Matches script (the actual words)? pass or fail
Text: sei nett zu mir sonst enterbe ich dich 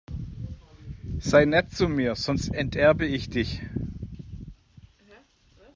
pass